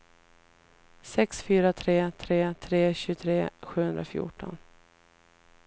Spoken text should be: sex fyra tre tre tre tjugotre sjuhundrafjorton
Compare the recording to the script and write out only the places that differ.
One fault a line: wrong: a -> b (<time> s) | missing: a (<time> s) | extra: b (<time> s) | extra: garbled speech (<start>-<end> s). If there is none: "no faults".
no faults